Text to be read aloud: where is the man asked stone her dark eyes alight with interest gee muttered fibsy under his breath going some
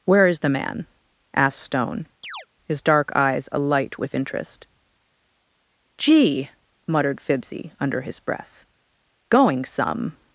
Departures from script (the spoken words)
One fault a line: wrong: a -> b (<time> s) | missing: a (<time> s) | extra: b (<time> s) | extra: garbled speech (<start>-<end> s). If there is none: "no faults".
wrong: her -> his (2.6 s)